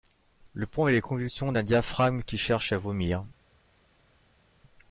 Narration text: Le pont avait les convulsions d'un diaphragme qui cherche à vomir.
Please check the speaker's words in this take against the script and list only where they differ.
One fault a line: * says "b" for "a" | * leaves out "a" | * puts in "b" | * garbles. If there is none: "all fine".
all fine